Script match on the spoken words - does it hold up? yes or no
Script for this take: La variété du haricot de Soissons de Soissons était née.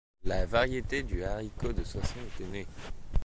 no